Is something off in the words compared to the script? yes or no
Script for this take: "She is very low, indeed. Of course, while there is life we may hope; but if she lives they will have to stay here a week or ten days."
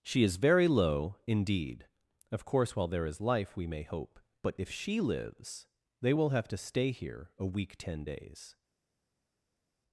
yes